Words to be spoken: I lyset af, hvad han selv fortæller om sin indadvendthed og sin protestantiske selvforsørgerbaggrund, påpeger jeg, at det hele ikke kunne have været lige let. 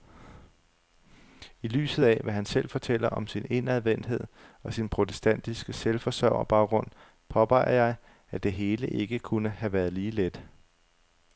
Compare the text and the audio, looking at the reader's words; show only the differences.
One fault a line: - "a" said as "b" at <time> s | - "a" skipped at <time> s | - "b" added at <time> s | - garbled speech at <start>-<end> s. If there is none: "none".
none